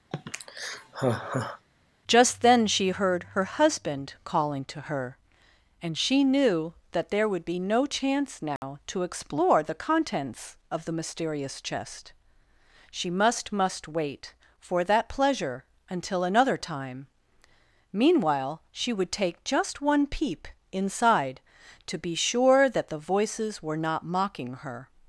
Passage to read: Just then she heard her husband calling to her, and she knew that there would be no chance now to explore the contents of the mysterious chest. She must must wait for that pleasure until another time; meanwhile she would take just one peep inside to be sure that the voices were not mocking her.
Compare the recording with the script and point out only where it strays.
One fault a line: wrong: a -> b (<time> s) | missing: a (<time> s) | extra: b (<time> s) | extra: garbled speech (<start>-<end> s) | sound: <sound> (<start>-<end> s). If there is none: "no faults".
sound: sigh (0.1-1.6 s)
sound: dropout (8.6-8.6 s)